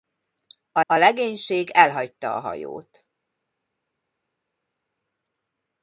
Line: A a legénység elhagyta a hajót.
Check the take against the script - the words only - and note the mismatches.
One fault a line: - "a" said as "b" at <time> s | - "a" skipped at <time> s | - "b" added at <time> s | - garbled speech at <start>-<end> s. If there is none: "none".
none